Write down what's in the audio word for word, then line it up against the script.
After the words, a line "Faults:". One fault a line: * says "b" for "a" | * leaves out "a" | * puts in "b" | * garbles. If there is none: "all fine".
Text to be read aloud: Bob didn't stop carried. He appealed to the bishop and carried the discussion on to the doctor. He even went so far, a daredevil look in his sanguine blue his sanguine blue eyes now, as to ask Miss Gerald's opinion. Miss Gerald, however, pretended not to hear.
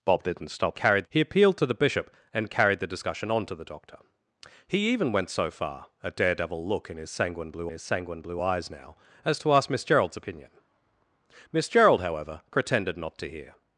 Bob didn't stop carried. He appealed to the bishop and carried the discussion on to the doctor. He even went so far, a daredevil look in his sanguine blue his sanguine blue eyes now, as to ask Miss Gerald's opinion. Miss Gerald, however, pretended not to hear.
Faults:
all fine